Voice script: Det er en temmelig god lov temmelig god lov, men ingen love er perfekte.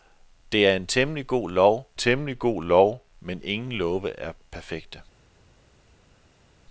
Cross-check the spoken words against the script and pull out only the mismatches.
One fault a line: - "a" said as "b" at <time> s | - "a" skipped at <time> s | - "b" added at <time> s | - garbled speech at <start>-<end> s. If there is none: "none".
none